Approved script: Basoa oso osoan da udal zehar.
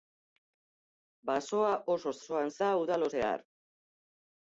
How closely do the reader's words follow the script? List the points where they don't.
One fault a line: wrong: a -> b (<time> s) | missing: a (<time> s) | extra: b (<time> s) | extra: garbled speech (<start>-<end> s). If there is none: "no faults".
no faults